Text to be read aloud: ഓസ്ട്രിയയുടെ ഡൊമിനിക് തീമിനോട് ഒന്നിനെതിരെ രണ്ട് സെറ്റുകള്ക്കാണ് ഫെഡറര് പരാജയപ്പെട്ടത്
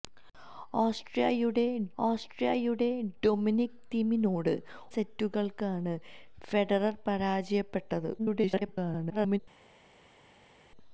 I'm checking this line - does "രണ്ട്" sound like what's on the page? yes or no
no